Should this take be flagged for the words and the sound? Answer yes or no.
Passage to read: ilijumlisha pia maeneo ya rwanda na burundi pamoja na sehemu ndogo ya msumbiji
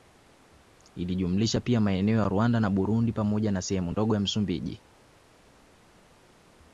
no